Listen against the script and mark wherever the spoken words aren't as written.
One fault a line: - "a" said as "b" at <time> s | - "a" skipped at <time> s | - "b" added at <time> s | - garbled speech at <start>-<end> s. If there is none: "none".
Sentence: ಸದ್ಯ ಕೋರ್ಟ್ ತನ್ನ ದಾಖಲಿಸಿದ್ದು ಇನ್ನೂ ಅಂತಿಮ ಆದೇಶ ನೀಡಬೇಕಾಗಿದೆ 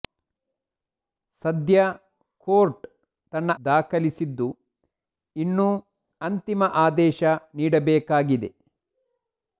none